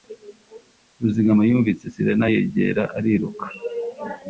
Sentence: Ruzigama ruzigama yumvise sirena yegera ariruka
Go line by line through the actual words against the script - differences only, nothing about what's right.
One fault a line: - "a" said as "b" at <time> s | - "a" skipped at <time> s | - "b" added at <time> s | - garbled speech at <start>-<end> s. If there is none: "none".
- "ruzigama" skipped at 1.4 s